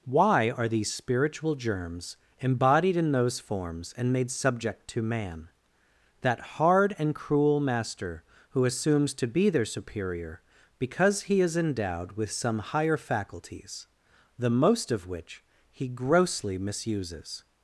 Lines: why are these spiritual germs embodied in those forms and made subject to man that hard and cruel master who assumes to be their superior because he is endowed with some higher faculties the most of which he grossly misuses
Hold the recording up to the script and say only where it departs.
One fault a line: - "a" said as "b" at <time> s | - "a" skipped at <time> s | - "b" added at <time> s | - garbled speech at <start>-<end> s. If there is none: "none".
none